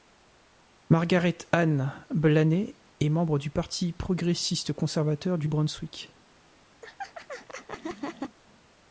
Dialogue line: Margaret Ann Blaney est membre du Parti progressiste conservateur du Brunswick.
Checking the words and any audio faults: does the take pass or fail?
fail